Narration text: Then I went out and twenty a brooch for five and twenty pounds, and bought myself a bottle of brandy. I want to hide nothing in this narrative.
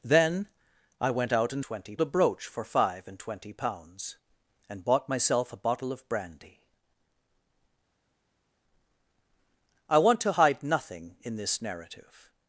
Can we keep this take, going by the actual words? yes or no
yes